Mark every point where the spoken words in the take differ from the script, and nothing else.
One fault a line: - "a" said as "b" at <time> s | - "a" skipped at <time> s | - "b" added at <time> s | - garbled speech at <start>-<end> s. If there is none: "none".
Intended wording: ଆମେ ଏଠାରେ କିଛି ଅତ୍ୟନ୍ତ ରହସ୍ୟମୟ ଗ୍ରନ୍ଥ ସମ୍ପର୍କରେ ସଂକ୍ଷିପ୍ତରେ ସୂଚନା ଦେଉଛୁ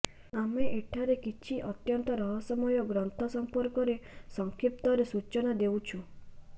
none